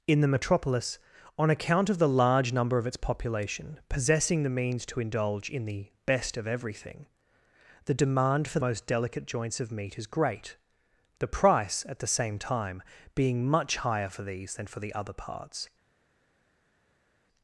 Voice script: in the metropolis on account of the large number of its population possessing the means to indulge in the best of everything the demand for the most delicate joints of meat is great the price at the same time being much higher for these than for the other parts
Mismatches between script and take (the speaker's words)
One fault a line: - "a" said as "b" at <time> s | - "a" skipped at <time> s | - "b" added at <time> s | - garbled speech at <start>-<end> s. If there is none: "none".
- "the" skipped at 8.6 s